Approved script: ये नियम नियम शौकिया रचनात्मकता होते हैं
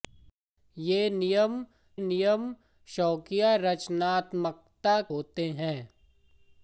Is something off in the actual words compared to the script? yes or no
no